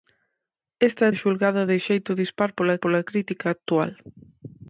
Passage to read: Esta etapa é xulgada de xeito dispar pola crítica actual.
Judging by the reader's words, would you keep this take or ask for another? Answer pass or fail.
fail